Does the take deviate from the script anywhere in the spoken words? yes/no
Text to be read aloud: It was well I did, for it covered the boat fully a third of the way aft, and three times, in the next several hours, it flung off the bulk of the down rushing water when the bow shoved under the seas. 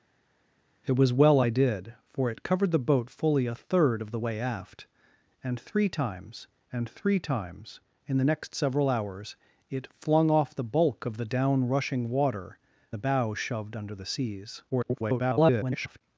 yes